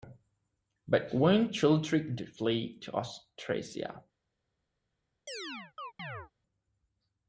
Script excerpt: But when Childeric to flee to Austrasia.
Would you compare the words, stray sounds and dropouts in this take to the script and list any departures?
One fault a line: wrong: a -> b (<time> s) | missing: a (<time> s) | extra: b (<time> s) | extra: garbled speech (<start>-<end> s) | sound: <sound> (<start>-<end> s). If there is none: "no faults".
sound: chirp (5.3-6.3 s)